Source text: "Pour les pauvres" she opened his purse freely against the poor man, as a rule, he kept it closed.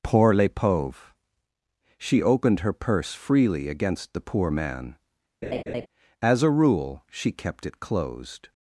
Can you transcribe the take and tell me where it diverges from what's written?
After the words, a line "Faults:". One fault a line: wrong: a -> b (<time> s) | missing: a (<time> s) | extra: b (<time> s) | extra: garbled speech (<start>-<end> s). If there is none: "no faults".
"Pour les pauvres" she opened her purse freely against the poor man, as a rule, she kept it closed.
Faults:
wrong: his -> her (2.6 s)
wrong: he -> she (7.1 s)